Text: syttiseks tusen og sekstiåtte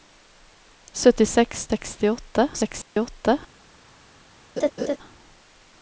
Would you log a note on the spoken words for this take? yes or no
yes